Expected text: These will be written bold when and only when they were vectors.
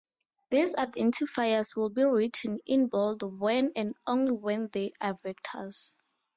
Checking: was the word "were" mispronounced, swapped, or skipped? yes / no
yes